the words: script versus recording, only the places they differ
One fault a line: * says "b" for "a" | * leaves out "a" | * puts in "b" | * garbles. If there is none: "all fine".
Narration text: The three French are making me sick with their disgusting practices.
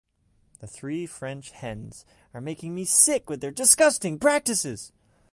* puts in "hens"